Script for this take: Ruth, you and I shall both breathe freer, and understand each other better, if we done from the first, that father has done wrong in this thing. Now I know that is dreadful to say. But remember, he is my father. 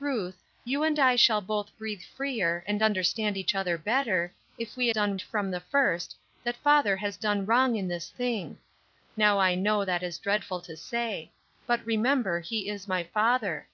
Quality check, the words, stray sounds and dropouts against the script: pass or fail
pass